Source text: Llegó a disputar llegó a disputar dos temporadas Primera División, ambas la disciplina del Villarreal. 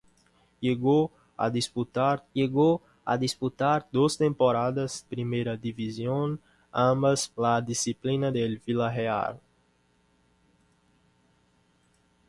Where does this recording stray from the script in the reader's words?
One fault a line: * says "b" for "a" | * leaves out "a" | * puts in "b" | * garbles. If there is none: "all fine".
all fine